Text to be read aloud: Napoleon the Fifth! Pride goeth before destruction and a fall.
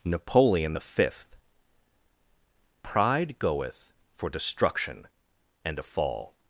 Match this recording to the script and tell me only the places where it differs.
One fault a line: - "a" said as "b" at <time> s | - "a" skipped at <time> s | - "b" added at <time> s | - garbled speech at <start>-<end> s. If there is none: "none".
- "before" said as "for" at 4.1 s